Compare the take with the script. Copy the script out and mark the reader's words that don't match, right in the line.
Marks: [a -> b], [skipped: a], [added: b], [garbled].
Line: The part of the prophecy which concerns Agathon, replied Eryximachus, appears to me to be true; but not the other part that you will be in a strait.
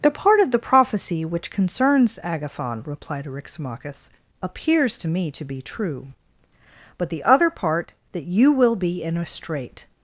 The part of the prophecy which concerns Agathon, replied Eryximachus, appears to me to be true; but [skipped: not] the other part that you will be in a strait.